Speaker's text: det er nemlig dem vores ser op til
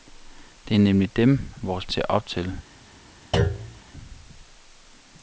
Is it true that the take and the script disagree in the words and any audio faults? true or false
true